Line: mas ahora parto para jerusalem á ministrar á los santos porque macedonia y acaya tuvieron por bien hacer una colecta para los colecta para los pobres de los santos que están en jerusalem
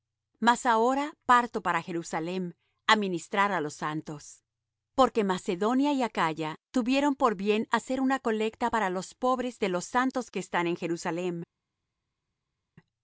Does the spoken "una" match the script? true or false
true